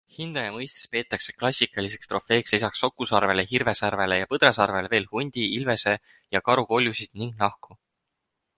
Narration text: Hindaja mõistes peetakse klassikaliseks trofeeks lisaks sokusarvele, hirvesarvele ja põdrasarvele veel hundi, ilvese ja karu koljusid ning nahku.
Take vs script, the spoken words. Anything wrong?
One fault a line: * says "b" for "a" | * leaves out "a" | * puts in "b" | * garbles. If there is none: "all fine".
all fine